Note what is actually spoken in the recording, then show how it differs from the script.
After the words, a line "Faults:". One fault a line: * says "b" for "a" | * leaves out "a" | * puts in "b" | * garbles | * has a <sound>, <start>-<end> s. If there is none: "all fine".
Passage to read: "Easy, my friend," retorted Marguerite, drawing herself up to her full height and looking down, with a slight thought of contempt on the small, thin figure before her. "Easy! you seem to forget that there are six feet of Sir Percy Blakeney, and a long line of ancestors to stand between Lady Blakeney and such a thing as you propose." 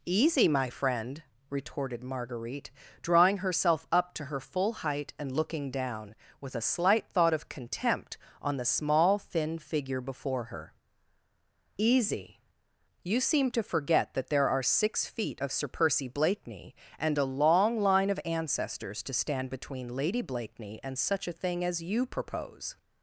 "Easy, my friend," retorted Marguerite, drawing herself up to her full height and looking down, with a slight thought of contempt on the small, thin figure before her. "Easy! you seem to forget that there are six feet of Sir Percy Blakeney, and a long line of ancestors to stand between Lady Blakeney and such a thing as you propose."
Faults:
all fine